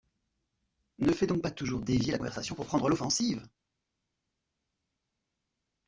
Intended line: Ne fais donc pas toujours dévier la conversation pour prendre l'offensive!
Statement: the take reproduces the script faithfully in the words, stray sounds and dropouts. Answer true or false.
true